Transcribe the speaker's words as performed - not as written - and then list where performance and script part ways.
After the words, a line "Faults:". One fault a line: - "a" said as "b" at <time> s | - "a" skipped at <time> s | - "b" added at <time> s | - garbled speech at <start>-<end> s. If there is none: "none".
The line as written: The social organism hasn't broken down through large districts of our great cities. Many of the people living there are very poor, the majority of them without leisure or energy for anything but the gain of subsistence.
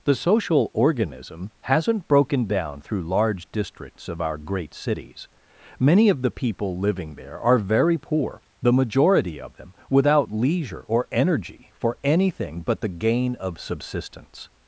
The social organism hasn't broken down through large districts of our great cities. Many of the people living there are very poor, the majority of them without leisure or energy for anything but the gain of subsistence.
Faults:
none